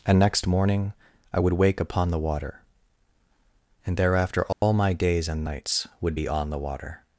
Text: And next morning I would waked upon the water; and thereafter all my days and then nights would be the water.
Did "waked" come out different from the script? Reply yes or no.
yes